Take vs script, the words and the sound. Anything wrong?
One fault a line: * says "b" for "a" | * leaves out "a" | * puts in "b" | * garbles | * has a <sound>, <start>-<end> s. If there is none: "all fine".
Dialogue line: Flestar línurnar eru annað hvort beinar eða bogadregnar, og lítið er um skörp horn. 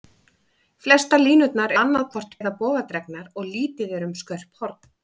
* leaves out "eru"
* leaves out "beinar"